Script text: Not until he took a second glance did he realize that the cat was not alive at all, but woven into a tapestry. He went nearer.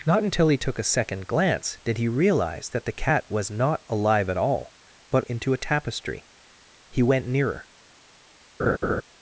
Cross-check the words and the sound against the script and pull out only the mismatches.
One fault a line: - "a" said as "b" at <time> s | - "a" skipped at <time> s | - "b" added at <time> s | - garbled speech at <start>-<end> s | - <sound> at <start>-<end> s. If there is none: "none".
- "woven" skipped at 5.3 s
- laugh at 8.6-9.0 s